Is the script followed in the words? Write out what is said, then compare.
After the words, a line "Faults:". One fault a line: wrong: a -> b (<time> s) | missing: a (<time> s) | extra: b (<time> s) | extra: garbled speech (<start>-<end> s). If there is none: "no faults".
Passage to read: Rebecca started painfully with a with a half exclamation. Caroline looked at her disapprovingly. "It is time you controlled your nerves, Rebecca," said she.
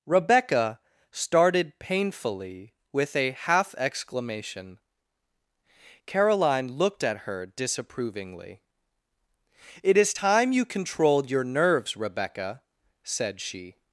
Rebecca started painfully with a half exclamation. Caroline looked at her disapprovingly. "It is time you controlled your nerves, Rebecca," said she.
Faults:
missing: with a (3.3 s)